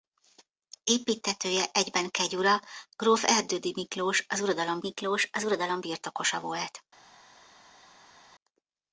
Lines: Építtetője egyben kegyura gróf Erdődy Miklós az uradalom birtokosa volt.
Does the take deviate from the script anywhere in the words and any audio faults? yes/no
yes